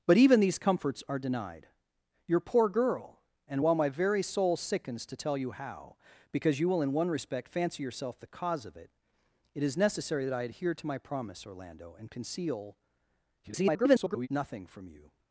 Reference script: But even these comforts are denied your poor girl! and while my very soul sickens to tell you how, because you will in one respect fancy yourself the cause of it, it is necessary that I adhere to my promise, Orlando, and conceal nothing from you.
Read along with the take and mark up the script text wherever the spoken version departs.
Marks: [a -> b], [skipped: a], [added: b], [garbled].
But even these comforts are denied your poor girl! and while my very soul sickens to tell you how, because you will in one respect fancy yourself the cause of it, it is necessary that I adhere to my promise, Orlando, and conceal [garbled] nothing from you.